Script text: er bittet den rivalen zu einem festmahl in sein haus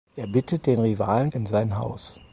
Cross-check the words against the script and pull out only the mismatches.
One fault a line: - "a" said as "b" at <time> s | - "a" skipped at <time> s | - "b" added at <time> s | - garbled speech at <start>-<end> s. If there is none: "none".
- "zu einem festmahl" skipped at 1.3 s